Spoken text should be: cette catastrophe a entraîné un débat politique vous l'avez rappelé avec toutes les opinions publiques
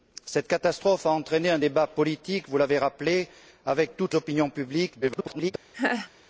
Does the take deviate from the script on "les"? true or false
true